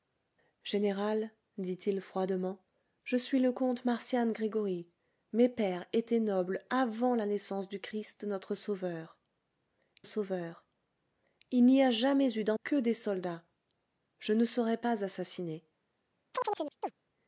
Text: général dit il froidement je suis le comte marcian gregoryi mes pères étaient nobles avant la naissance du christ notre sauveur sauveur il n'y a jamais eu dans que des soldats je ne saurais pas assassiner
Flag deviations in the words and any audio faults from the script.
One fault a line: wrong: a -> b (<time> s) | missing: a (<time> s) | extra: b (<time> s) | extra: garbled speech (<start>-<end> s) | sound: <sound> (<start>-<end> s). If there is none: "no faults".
sound: chirp (16.3-16.9 s)